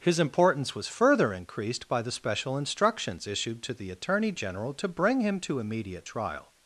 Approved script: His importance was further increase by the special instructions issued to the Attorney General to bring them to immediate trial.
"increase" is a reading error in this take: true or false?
true